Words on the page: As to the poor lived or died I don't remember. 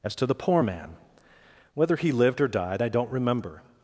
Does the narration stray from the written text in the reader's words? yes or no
yes